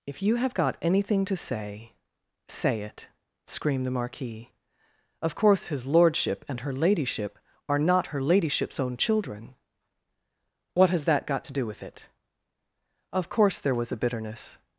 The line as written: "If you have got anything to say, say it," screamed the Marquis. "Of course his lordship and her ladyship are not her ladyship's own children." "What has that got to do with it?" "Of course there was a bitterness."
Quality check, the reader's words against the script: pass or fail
pass